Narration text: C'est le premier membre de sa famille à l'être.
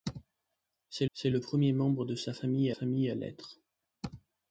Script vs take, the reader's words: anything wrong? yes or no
yes